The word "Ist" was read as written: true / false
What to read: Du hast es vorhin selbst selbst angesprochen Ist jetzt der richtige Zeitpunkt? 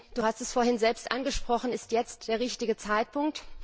true